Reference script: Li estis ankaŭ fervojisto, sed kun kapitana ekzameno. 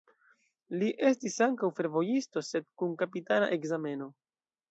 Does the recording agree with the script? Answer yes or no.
yes